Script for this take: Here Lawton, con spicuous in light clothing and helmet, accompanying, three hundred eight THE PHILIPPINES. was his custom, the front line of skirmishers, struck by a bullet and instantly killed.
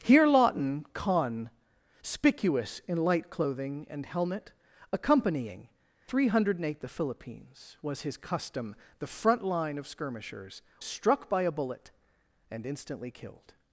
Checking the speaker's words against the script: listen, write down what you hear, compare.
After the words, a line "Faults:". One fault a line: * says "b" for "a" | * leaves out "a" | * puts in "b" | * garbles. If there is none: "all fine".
Here Lawton, con spicuous in light clothing and helmet, accompanying, three hundred eight THE PHILIPPINES. was his custom, the front line of skirmishers, struck by a bullet and instantly killed.
Faults:
all fine